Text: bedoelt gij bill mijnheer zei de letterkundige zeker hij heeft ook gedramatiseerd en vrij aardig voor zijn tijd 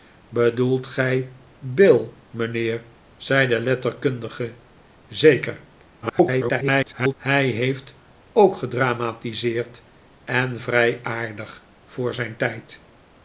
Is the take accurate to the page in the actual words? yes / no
no